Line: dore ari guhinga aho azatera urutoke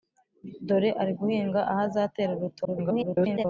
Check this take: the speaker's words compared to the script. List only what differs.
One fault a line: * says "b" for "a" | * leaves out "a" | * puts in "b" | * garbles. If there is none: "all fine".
* garbles